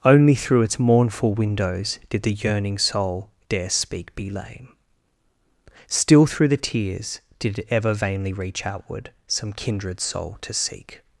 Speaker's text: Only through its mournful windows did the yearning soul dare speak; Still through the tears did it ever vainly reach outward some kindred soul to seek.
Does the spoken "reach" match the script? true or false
true